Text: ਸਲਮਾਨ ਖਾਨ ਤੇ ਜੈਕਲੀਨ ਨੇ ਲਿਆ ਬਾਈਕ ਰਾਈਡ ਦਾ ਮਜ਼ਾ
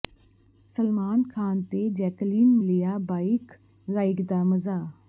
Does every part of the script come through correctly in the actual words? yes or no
no